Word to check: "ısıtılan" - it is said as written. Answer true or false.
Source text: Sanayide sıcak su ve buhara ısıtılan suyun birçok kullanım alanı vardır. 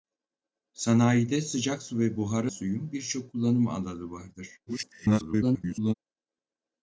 false